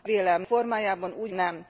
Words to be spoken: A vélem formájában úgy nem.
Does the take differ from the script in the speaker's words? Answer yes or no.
no